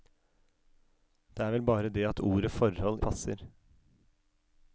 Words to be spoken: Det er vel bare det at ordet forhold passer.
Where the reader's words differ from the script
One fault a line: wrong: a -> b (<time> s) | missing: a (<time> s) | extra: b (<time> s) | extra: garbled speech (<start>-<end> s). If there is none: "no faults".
no faults